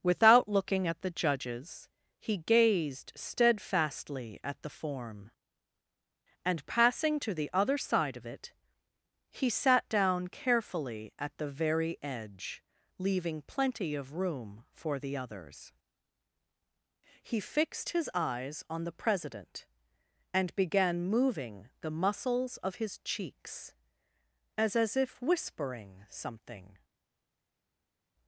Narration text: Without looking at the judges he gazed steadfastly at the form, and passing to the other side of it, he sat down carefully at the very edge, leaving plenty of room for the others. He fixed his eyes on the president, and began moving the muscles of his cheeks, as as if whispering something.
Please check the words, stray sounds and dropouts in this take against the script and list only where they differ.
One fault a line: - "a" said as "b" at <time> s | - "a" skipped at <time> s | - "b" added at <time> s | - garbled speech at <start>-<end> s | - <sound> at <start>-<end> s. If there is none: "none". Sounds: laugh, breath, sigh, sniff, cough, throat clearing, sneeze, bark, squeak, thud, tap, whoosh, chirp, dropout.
none